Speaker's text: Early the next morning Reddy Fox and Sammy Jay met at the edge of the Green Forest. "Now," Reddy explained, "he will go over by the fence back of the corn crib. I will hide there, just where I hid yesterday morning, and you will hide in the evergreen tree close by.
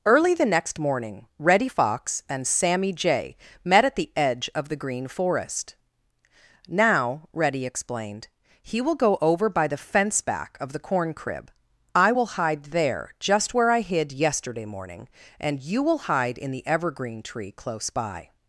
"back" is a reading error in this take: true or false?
false